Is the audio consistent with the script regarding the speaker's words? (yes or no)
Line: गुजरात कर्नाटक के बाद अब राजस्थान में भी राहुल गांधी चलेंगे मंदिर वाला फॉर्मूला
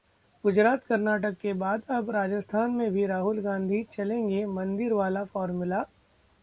yes